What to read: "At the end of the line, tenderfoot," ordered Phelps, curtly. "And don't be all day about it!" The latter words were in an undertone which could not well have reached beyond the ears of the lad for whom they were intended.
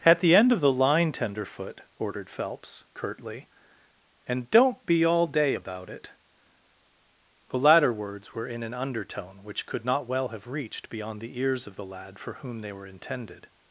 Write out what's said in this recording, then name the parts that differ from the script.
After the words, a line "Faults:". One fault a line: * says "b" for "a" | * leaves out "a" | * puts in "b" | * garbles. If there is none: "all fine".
"At the end of the line, tenderfoot," ordered Phelps, curtly. "And don't be all day about it!" The latter words were in an undertone which could not well have reached beyond the ears of the lad for whom they were intended.
Faults:
all fine